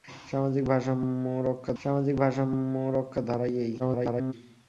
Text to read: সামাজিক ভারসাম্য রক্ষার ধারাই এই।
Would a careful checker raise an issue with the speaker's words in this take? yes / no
yes